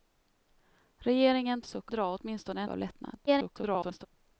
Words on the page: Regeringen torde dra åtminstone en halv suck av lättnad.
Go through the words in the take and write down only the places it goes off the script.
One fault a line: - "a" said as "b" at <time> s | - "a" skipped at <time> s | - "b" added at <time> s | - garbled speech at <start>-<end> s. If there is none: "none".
- "torde" said as "suck" at 1.6 s
- "halv suck" skipped at 2.7 s
- garbled speech at 3.3-4.1 s